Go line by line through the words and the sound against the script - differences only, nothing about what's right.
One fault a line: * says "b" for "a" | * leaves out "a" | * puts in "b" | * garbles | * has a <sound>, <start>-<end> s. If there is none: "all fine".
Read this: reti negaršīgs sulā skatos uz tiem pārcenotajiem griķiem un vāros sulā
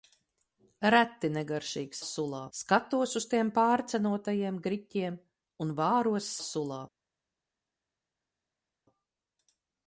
all fine